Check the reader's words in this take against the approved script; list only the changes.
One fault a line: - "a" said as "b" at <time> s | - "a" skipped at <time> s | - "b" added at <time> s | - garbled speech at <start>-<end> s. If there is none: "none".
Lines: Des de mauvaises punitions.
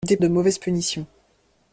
none